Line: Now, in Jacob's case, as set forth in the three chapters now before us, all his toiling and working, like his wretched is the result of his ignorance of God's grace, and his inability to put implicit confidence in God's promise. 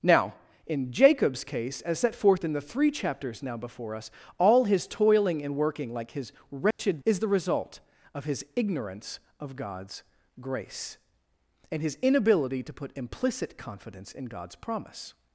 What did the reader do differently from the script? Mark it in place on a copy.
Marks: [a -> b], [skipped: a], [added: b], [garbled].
Now, in Jacob's case, as set forth in the three chapters now before us, all his toiling and working, like his wretched is the result of his ignorance of God's grace, and his inability to put implicit confidence in God's promise.